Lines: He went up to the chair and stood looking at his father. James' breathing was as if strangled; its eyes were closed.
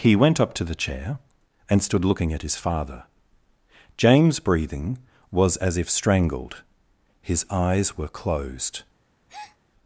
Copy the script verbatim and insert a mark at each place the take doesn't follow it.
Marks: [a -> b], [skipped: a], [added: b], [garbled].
He went up to the chair and stood looking at his father. James' breathing was as if strangled; [its -> his] eyes were closed.